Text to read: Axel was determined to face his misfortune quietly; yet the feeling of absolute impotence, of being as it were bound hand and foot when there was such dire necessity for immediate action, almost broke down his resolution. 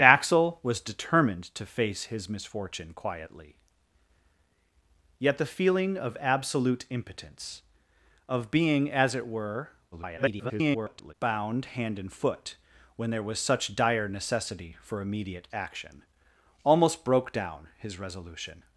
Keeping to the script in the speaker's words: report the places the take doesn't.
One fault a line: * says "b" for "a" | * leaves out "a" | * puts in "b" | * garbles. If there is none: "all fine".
* garbles